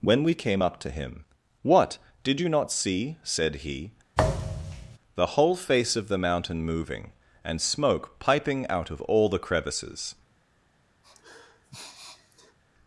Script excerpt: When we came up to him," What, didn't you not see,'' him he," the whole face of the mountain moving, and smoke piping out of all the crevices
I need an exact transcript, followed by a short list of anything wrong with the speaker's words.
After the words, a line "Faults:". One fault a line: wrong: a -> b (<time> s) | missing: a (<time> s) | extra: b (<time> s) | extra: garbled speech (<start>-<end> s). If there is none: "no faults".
When we came up to him," What, did you not see,'' said he," the whole face of the mountain moving, and smoke piping out of all the crevices
Faults:
wrong: didn't -> did (2.2 s)
wrong: him -> said (3.2 s)